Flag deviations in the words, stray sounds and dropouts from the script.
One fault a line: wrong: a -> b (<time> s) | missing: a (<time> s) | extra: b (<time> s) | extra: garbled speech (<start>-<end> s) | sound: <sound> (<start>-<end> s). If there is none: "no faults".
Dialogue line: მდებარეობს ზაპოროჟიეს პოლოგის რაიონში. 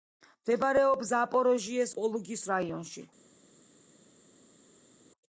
no faults